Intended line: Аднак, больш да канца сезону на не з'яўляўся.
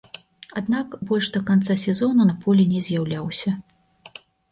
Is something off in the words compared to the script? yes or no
yes